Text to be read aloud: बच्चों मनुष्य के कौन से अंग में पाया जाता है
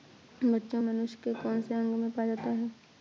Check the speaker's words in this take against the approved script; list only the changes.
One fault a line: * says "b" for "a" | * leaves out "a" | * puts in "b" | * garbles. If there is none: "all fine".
all fine